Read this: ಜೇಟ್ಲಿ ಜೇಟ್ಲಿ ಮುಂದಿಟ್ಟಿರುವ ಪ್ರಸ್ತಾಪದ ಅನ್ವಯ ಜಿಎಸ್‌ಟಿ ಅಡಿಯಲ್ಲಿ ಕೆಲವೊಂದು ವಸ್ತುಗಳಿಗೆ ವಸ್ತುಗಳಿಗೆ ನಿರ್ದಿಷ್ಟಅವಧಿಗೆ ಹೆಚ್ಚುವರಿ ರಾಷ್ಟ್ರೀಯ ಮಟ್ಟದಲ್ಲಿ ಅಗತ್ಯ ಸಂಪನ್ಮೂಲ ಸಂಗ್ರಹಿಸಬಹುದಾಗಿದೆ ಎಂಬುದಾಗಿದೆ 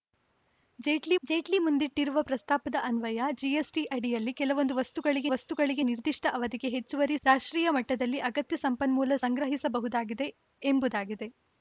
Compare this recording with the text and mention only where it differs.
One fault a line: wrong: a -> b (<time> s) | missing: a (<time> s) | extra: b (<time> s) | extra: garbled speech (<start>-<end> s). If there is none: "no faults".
no faults